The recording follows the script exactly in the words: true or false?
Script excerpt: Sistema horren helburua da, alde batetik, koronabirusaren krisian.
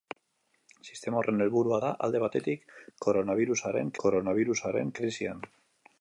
false